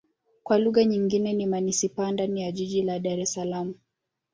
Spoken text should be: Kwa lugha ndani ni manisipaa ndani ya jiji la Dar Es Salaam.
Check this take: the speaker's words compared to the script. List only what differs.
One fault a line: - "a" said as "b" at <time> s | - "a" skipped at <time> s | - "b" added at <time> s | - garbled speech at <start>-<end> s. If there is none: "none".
- "ndani" said as "nyingine" at 0.8 s